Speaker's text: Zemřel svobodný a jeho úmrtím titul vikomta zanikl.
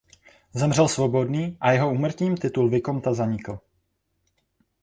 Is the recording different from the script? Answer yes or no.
no